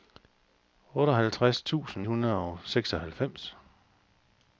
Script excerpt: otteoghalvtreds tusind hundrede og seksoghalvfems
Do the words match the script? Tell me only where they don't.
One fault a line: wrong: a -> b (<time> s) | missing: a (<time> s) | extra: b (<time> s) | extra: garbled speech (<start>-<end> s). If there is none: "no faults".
no faults